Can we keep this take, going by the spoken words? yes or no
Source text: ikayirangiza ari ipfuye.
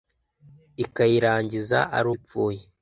yes